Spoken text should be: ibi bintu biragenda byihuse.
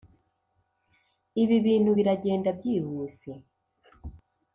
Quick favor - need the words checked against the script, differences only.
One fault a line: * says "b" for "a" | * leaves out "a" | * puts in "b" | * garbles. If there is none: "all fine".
all fine